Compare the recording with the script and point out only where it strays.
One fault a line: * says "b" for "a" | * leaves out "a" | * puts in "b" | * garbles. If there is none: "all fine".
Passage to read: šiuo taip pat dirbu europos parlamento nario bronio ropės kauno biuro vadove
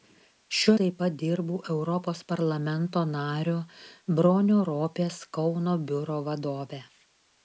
all fine